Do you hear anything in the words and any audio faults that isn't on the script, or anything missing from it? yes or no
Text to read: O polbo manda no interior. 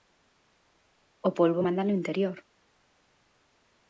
no